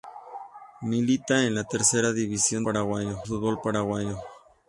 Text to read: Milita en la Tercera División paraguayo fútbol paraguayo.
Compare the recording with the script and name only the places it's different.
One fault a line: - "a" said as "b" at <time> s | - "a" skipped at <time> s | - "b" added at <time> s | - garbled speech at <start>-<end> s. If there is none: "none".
none